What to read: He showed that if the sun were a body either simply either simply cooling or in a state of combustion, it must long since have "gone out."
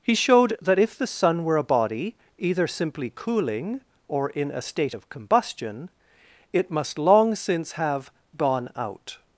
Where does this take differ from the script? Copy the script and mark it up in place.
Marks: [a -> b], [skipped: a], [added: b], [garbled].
He showed that if the sun were a body either simply [skipped: either simply] cooling or in a state of combustion, it must long since have "gone out."